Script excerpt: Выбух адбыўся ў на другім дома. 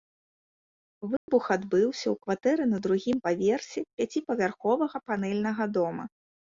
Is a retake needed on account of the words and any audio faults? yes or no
yes